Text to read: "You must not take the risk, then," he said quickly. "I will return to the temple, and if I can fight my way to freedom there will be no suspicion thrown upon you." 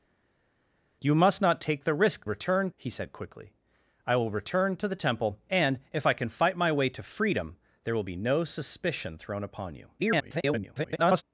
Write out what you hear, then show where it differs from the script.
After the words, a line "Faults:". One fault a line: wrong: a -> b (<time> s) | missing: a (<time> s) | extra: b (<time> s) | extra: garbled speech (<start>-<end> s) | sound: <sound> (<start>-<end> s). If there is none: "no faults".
"You must not take the risk, return," he said quickly. "I will return to the temple, and if I can fight my way to freedom there will be no suspicion thrown upon you." [garbled]
Faults:
wrong: then -> return (2.2 s)
extra: garbled speech (10.0-11.2 s)